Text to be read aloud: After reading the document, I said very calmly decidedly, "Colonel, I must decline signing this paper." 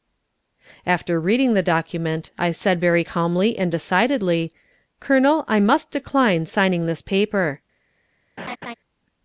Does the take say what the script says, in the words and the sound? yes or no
no